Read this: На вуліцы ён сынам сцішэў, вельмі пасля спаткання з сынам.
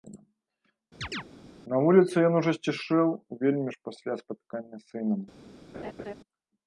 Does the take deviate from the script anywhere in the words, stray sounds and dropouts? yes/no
yes